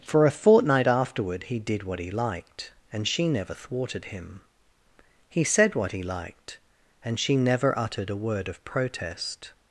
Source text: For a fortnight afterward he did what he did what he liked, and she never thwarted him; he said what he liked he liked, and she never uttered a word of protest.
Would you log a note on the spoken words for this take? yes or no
yes